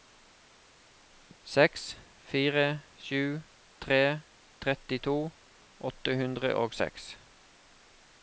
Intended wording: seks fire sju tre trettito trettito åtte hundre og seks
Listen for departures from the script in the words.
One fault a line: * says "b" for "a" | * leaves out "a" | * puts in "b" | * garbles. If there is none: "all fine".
* leaves out "trettito"